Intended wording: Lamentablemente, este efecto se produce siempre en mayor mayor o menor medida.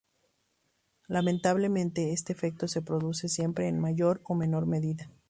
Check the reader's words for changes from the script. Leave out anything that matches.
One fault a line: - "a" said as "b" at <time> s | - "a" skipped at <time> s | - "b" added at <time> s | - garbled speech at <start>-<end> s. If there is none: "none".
- "mayor" skipped at 4.2 s